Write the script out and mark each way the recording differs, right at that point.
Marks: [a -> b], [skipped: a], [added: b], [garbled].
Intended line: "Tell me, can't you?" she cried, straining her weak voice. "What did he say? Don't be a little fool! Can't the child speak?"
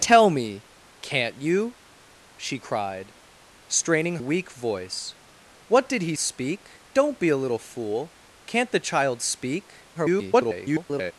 "Tell me, can't you?" she cried, straining [skipped: her] weak voice. "What did he [say? -> speak] Don't be a little fool! Can't the child speak?" [garbled]